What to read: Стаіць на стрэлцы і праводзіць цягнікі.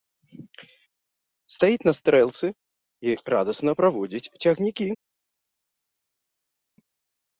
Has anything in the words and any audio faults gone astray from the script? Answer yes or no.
yes